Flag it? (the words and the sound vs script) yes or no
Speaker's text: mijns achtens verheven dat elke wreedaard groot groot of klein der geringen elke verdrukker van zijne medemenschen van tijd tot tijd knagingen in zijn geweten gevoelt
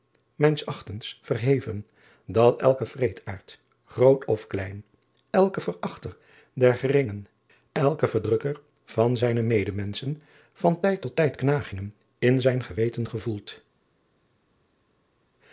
yes